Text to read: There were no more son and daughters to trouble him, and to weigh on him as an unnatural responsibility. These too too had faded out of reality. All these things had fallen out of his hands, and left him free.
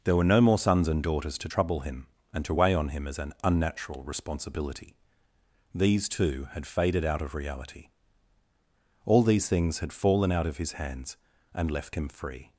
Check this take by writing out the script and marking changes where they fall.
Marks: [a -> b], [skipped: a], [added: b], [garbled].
There were no more [son -> sons] and daughters to trouble him, and to weigh on him as an unnatural responsibility. These too [skipped: too] had faded out of reality. All these things had fallen out of his hands, and left him free.